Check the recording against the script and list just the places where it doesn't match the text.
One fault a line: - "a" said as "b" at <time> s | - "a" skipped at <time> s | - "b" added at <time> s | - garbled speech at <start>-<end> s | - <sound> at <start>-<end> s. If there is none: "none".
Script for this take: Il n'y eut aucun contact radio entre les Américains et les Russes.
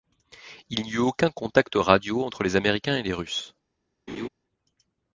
- laugh at 4.1-4.3 s